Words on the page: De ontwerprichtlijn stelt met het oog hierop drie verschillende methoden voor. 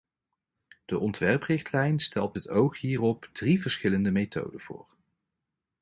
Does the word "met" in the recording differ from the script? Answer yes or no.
yes